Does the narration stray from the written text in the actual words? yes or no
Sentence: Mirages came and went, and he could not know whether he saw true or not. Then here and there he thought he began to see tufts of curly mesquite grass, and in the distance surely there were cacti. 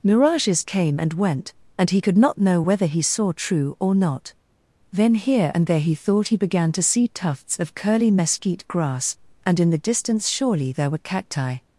no